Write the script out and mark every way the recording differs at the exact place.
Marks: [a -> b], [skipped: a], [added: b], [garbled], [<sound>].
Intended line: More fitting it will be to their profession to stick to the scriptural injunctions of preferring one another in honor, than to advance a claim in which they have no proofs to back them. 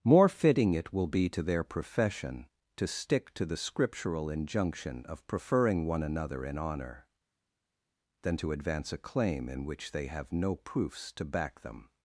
More fitting it will be to their profession to stick to the scriptural [injunctions -> injunction] of preferring one another in honor, than to advance a claim in which they have no proofs to back them.